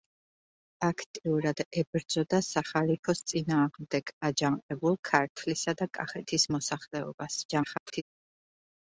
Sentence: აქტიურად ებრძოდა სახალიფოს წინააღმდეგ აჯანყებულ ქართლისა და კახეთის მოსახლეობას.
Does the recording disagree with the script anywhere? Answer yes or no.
yes